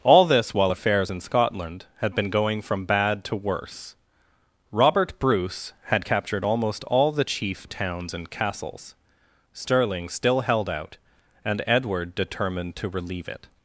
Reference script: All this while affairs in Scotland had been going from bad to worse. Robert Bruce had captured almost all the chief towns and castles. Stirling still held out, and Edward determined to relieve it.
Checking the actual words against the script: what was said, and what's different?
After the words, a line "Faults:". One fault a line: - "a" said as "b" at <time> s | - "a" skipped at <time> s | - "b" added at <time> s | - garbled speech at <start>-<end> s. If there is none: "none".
All this while affairs in Scotland had been going from bad to worse. Robert Bruce had captured almost all the chief towns and castles. Stirling still held out, and Edward determined to relieve it.
Faults:
none